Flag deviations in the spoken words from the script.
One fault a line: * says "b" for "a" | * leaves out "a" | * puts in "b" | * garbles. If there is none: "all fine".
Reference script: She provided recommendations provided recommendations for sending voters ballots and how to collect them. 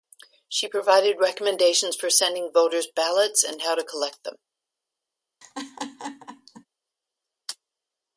* leaves out "provided recommendations"